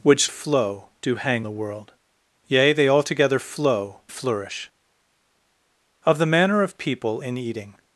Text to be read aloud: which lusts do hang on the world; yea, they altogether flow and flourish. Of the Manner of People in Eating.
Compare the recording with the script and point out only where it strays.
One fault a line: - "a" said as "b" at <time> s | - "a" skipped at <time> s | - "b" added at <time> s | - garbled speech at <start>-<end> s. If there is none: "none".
- "lusts" said as "flow" at 0.3 s
- "on" skipped at 1.4 s
- "and" skipped at 4.0 s